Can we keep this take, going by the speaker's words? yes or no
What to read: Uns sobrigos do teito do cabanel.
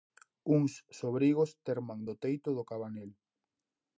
no